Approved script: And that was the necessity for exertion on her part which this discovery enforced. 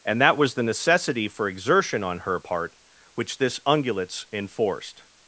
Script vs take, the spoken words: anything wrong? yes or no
yes